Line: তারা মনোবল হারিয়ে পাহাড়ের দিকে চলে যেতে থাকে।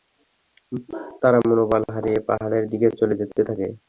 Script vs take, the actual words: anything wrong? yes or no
no